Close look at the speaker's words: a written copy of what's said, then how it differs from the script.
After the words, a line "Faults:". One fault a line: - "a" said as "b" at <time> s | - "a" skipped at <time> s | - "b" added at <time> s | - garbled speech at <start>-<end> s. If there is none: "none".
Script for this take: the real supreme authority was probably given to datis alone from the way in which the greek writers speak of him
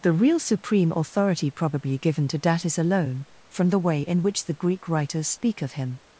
the real supreme authority probably given to datis alone from the way in which the greek writers speak of him
Faults:
- "was" skipped at 1.5 s